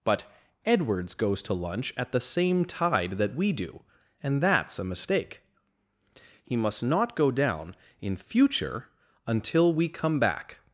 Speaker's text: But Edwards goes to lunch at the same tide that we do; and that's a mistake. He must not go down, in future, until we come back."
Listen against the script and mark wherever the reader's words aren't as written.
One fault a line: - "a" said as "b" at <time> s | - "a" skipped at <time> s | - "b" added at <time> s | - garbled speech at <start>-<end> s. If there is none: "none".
none